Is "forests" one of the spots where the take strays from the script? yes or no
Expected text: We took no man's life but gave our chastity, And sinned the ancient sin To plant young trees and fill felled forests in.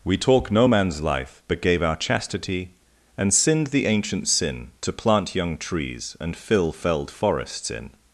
no